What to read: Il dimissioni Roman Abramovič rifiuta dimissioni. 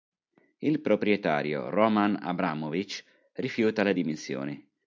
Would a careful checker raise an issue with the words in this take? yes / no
yes